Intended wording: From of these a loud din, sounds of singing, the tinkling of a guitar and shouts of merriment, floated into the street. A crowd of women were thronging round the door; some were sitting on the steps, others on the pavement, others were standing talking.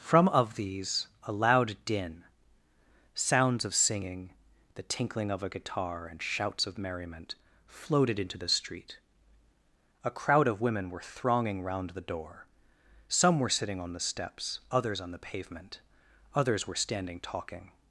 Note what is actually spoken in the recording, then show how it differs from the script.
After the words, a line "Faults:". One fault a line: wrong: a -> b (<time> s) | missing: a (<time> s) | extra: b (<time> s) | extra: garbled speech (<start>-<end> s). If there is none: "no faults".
From of these a loud din, sounds of singing, the tinkling of a guitar and shouts of merriment, floated into the street. A crowd of women were thronging round the door; some were sitting on the steps, others on the pavement, others were standing talking.
Faults:
no faults